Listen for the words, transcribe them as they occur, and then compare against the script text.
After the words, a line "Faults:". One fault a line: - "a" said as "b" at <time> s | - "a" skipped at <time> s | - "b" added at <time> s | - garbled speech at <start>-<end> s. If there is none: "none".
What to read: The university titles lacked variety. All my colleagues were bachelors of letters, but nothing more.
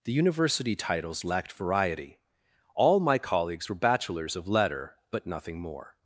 The university titles lacked variety. All my colleagues were bachelors of letter, but nothing more.
Faults:
- "letters" said as "letter" at 4.5 s